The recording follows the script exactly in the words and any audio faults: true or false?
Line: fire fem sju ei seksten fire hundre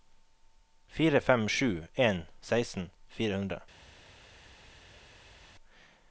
false